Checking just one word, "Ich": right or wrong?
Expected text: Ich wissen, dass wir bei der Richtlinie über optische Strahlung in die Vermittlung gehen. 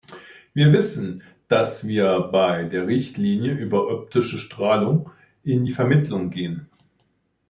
wrong